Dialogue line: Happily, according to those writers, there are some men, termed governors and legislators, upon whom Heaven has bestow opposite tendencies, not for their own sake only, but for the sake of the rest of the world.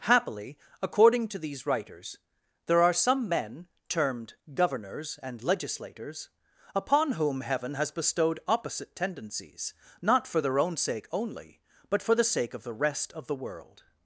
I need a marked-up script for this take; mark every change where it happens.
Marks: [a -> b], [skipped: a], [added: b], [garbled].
Happily, according to [those -> these] writers, there are some men, termed governors and legislators, upon whom Heaven has [bestow -> bestowed] opposite tendencies, not for their own sake only, but for the sake of the rest of the world.